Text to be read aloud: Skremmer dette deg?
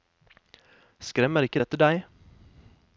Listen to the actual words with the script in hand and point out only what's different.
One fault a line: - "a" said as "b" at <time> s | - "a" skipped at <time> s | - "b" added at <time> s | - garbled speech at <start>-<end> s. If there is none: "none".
- "ikke" added at 1.5 s